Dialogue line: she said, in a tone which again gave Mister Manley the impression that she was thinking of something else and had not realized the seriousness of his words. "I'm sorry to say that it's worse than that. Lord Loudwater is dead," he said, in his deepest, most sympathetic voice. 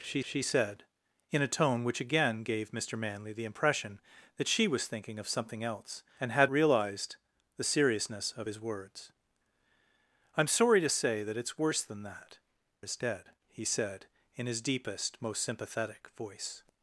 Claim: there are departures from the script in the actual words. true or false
true